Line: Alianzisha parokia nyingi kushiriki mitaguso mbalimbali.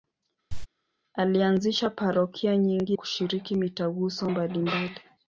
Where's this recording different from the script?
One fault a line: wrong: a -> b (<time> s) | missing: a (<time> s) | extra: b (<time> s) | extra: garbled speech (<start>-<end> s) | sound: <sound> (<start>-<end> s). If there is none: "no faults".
sound: cough (0.5-0.7 s)